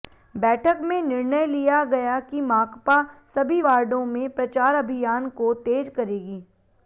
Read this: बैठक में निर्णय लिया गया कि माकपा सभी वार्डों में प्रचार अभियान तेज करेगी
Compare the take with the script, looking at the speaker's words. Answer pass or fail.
fail